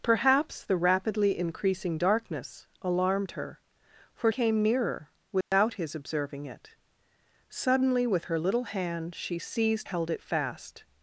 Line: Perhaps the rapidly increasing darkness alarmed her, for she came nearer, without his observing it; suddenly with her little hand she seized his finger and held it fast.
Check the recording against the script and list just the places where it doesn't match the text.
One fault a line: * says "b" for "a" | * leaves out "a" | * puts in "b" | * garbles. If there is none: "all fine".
* leaves out "she"
* leaves out "his finger and"